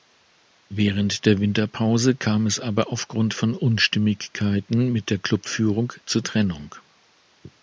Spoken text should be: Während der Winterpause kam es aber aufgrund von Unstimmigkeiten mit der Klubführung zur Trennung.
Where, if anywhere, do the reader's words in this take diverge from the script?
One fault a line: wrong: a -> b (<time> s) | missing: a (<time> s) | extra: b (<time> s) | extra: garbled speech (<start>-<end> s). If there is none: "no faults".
no faults